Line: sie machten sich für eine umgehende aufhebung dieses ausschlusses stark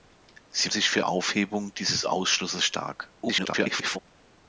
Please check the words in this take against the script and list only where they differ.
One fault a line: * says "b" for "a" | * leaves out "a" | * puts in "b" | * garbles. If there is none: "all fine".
* leaves out "machten"
* leaves out "eine umgehende"
* garbles